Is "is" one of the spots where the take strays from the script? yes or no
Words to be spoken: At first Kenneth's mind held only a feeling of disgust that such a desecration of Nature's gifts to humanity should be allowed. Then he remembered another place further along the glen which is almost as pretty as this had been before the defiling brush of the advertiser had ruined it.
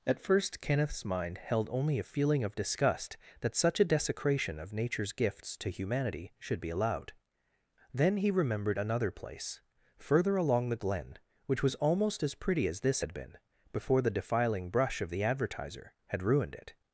yes